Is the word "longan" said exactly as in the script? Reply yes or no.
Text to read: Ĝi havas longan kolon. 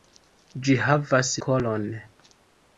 no